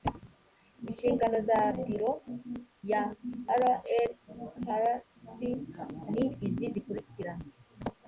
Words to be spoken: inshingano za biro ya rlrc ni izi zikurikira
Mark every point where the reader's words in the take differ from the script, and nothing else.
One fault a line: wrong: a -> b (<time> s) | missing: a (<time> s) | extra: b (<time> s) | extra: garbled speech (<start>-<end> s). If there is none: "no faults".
no faults